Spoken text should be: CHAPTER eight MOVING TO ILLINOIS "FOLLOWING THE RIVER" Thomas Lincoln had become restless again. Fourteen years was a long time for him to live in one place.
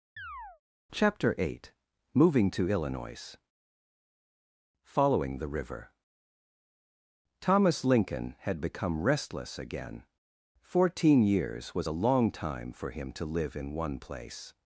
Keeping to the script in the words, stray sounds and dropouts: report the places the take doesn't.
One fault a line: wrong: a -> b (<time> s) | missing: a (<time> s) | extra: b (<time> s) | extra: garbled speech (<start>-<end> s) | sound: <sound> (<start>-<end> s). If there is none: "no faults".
sound: chirp (0.2-0.6 s)